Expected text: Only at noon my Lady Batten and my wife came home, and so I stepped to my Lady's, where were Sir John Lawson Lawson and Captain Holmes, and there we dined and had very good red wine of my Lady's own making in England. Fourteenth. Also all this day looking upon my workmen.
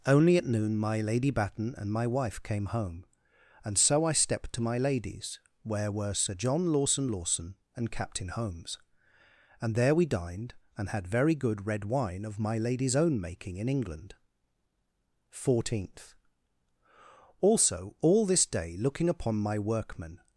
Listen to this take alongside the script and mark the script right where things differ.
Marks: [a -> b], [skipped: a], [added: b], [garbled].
Only at noon my Lady Batten and my wife came home, and so I stepped to my Lady's, where were Sir John Lawson Lawson and Captain Holmes, and there we dined and had very good red wine of my Lady's own making in England. Fourteenth. Also all this day looking upon my workmen.